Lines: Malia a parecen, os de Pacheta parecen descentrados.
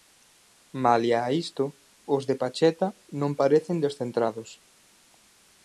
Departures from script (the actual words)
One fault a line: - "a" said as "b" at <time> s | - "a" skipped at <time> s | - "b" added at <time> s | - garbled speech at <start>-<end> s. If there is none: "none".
- "parecen" said as "isto" at 1.4 s
- "non" added at 3.2 s